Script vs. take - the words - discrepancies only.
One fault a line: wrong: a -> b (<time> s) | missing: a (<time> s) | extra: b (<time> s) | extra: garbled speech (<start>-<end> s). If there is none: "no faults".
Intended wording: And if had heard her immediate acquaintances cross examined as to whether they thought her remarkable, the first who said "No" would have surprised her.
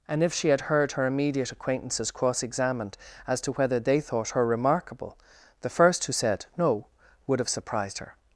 extra: she (0.3 s)